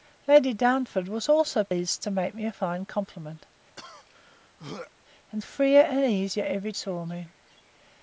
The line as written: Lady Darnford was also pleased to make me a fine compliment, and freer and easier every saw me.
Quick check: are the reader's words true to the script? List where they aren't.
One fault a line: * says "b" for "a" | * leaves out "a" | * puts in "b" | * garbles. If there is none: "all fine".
all fine